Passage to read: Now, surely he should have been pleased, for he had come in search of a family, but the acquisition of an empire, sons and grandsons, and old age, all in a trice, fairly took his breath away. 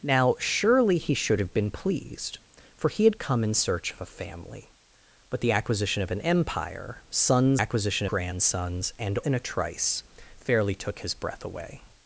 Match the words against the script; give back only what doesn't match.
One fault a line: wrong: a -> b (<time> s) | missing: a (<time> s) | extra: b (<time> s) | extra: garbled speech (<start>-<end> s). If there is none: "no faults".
wrong: and -> acquisition (7.6 s)
missing: old age all (9.2 s)